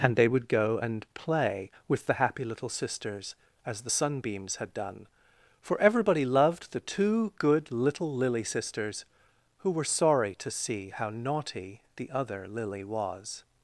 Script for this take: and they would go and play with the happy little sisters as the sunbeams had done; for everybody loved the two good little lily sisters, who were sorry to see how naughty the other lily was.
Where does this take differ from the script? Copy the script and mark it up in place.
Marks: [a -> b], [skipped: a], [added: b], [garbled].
and they would go and play with the happy little sisters as the sunbeams had done; for everybody loved the two good little lily sisters, who were sorry to see how naughty the other lily was.